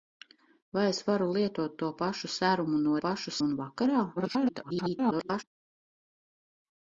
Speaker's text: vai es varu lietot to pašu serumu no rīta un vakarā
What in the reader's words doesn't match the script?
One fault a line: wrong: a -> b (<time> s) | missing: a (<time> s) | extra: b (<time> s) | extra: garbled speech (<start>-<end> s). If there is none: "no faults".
wrong: rīta -> pašu (3.0 s)
extra: garbled speech (4.2-5.4 s)